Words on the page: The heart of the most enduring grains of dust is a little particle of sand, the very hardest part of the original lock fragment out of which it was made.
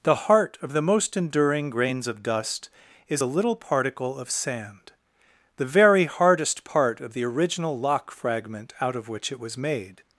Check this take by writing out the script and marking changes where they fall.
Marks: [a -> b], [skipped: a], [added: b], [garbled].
The heart of the most enduring grains of dust is a little particle of sand, the very hardest part of the original lock fragment out of which it was made.